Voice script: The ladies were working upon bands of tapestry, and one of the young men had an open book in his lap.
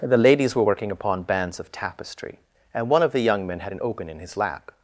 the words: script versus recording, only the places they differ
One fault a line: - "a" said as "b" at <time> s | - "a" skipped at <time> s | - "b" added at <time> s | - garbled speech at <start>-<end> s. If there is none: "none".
- "book" skipped at 4.1 s